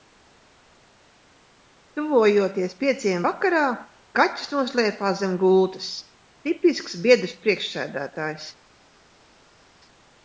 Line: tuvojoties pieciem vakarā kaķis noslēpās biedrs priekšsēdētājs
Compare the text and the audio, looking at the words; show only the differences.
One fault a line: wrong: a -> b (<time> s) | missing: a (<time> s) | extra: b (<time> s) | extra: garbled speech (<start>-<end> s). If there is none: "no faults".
extra: zem gultas tipisks (5.2 s)